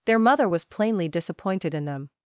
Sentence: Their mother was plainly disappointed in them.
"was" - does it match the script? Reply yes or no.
yes